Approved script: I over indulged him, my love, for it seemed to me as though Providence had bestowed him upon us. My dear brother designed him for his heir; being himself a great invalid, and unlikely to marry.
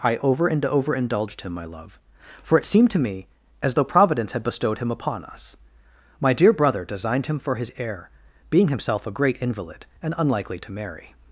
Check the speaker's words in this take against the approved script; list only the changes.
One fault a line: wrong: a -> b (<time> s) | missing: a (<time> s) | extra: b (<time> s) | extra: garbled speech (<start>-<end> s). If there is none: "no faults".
extra: and over (0.5 s)